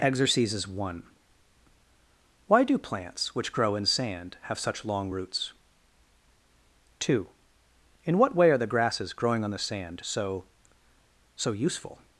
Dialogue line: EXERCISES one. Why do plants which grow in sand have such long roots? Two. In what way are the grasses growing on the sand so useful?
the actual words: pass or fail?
fail